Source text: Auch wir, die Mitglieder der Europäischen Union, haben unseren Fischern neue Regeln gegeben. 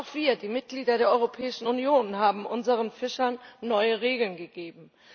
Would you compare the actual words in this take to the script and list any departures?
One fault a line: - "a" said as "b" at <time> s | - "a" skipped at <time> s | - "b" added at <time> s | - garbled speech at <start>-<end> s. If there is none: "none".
none